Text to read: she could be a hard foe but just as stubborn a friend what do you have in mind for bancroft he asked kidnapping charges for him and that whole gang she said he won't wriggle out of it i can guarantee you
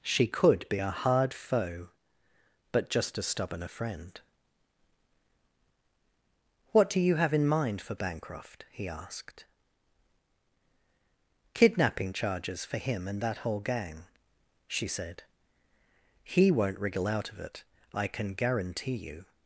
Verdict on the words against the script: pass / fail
pass